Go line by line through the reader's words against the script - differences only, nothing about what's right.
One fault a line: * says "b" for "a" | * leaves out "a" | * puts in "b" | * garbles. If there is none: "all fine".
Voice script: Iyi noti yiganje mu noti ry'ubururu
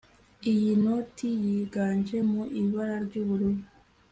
* says "ibara" for "noti"